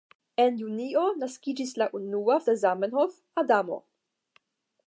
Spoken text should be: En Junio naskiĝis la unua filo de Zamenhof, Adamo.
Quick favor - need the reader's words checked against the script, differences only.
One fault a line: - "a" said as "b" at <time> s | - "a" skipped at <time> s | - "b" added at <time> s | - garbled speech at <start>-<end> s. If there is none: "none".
- "filo" skipped at 2.4 s